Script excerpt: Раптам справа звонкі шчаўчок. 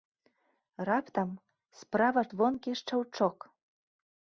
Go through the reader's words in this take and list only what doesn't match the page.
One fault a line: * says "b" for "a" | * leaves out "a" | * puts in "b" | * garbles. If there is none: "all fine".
all fine